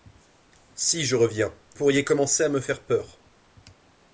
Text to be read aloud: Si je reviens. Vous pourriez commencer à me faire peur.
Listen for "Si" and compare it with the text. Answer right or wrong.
right